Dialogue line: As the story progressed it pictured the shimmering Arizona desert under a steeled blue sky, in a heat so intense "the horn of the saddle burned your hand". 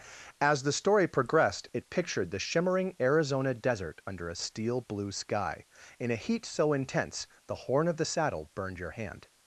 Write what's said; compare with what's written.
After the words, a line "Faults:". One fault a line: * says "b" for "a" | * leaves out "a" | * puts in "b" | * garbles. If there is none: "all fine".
As the story progressed it pictured the shimmering Arizona desert under a steel blue sky, in a heat so intense "the horn of the saddle burned your hand".
Faults:
* says "steel" for "steeled"